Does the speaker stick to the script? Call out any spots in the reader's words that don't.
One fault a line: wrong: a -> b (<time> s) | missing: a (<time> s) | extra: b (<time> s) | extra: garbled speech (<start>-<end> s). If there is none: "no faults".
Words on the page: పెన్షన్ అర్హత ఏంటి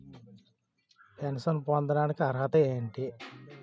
extra: పొందడానికి (1.7 s)